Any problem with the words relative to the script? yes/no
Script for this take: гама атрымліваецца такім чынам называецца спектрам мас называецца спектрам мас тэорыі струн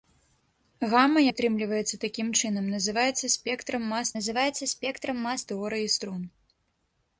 no